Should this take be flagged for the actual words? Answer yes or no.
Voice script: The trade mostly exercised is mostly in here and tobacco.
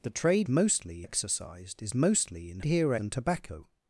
no